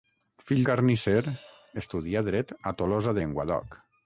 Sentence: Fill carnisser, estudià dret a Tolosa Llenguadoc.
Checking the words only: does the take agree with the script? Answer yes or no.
yes